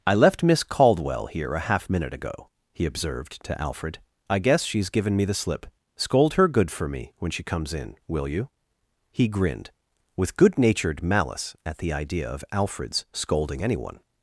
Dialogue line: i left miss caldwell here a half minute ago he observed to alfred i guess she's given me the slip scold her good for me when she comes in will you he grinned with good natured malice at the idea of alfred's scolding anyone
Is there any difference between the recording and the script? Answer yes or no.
no